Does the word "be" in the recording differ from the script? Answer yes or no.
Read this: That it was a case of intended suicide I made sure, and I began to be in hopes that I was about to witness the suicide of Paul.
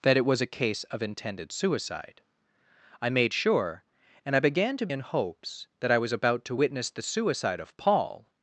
yes